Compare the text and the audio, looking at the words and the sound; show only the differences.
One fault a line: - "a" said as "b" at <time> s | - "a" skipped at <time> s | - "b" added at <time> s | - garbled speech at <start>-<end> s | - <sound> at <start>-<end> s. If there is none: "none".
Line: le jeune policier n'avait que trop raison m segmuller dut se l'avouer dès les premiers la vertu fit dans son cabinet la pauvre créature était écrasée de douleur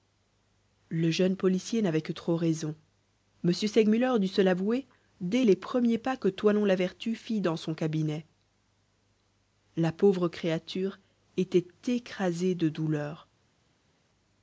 - "pas que toinon" added at 6.0 s